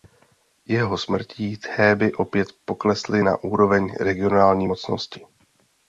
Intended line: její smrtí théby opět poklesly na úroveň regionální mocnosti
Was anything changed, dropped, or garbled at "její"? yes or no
yes